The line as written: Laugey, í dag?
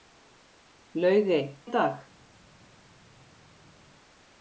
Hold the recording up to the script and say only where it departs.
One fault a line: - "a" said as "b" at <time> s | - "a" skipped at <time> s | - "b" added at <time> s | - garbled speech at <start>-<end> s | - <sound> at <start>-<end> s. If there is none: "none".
none